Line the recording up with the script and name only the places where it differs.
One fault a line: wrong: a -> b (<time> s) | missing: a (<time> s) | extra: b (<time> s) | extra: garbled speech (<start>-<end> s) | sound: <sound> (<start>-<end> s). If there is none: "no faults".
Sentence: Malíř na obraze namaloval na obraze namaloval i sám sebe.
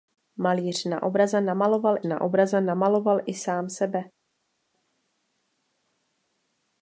no faults